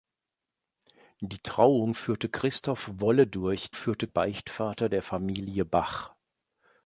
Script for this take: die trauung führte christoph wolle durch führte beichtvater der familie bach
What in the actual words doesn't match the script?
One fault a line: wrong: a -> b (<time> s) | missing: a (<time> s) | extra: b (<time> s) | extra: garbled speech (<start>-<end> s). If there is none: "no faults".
no faults